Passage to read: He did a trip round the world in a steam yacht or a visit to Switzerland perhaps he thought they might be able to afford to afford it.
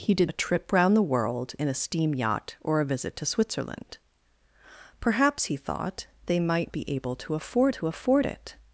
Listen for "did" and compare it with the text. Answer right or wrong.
right